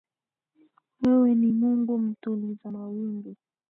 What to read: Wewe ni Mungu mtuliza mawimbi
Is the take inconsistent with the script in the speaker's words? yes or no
no